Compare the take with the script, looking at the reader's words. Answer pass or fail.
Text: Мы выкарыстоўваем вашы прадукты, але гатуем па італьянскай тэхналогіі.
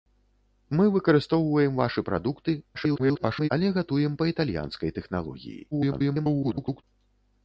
fail